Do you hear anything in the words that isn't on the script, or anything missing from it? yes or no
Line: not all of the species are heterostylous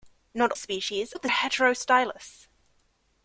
yes